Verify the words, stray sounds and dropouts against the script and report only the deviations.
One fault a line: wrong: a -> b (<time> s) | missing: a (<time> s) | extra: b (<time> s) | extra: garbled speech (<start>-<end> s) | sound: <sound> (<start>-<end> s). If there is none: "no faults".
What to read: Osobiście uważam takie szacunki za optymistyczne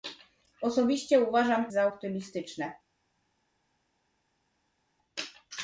missing: takie szacunki (1.7 s)